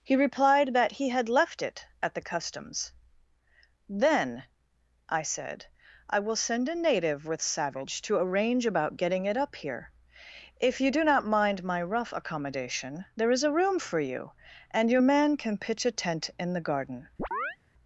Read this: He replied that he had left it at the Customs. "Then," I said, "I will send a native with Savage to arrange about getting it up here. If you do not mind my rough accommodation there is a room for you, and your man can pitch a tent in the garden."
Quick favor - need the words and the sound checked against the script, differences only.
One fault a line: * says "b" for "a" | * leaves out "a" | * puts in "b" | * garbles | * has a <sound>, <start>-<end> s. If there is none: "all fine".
* has a chirp, 17.2-17.6 s